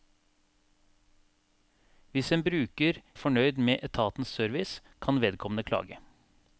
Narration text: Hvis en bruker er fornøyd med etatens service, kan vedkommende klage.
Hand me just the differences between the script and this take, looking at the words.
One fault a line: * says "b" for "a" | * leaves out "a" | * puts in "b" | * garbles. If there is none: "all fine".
all fine